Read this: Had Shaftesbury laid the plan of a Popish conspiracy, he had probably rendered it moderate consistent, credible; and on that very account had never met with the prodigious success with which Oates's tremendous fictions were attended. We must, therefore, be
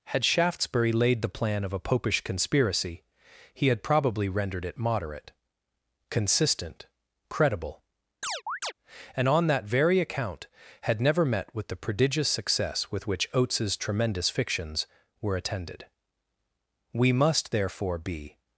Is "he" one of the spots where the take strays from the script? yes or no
no